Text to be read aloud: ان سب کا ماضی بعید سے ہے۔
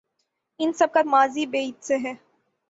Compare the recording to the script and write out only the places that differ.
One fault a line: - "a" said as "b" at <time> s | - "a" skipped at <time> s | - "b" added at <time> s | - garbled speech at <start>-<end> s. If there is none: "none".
none